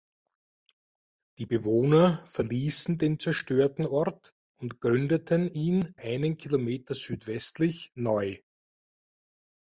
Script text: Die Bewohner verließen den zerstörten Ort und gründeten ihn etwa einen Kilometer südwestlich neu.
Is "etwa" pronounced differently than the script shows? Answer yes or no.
yes